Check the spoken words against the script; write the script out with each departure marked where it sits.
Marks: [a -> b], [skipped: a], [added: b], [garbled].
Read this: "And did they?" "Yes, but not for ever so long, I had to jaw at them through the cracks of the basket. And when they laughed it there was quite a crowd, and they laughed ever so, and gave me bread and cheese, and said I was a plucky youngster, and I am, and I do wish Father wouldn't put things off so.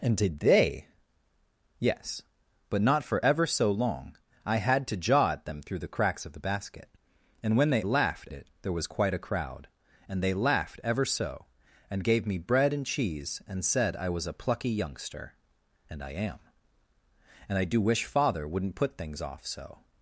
"And did they?" "Yes, but not for ever so long, I had to jaw at them through the cracks of the basket. And when they laughed it there was quite a crowd, and they laughed ever so, and gave me bread and cheese, and said I was a plucky youngster, and I am, and I do wish Father wouldn't put things off so.